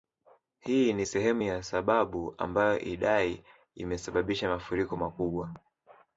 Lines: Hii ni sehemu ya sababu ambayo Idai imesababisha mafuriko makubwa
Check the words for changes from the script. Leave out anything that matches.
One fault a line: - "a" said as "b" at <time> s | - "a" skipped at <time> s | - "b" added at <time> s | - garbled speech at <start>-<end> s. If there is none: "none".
none